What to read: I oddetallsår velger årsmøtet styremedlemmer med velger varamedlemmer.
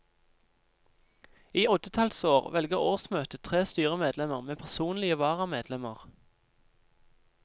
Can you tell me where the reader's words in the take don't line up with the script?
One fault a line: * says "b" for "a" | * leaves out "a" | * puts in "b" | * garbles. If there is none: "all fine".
* puts in "tre"
* says "personlige" for "velger"